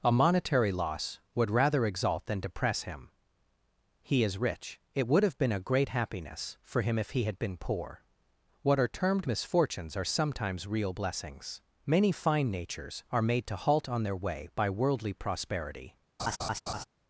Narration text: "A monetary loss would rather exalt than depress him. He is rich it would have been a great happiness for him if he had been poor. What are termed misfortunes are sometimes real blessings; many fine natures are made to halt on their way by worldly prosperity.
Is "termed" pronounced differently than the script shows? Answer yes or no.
no